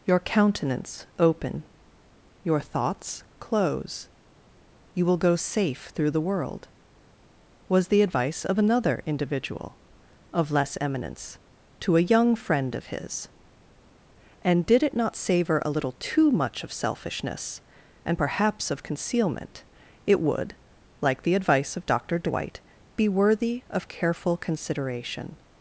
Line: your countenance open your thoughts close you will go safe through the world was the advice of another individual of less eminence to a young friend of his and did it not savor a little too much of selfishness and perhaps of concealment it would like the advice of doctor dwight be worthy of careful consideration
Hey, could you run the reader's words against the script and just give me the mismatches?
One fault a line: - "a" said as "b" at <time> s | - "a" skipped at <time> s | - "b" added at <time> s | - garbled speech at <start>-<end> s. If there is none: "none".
none